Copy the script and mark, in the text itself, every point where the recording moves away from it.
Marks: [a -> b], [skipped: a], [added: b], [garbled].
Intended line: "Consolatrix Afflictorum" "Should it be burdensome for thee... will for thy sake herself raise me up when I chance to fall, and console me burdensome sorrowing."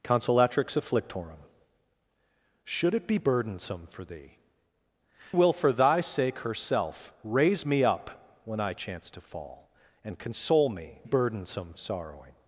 "Consolatrix Afflictorum" "Should it be burdensome for thee... will for thy sake herself raise me up when I chance to fall, and console me burdensome sorrowing."